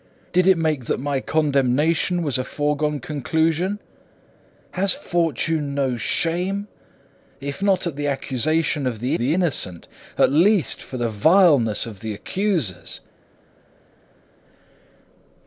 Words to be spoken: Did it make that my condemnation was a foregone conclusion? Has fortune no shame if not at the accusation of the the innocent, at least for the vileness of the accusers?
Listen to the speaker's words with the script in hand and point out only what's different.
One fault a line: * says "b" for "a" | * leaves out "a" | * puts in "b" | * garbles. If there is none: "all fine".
all fine